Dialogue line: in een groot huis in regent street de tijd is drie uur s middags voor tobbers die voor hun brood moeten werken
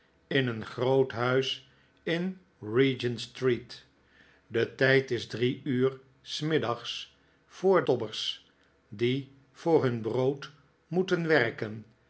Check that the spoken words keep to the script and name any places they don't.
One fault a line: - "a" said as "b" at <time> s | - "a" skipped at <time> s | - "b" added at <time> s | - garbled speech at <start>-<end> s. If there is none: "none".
none